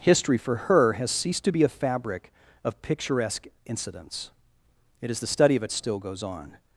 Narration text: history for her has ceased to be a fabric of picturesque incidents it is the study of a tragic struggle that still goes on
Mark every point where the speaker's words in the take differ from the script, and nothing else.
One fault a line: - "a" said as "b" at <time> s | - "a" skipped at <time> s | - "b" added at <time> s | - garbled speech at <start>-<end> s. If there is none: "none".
- "tragic struggle that" skipped at 5.7 s